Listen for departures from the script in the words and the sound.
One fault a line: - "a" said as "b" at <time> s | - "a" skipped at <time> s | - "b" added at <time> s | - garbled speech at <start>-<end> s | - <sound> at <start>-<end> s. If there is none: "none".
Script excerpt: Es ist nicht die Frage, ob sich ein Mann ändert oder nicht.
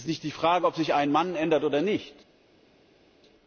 none